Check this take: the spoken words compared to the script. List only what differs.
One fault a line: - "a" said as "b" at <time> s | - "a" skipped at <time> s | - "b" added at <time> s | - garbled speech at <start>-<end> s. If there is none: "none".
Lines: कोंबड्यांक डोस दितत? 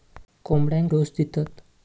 none